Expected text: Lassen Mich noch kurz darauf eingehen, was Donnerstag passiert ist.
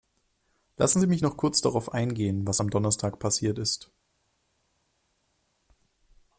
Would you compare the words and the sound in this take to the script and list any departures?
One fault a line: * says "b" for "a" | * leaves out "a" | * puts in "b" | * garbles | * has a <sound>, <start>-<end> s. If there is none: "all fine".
* puts in "Sie"
* puts in "am"